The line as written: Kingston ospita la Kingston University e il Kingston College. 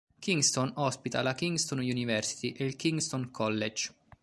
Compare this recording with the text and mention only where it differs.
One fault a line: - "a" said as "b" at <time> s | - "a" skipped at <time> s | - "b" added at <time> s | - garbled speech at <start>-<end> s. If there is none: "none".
none